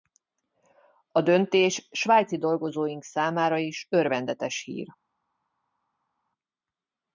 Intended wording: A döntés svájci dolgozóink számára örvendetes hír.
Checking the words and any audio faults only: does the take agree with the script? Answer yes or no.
no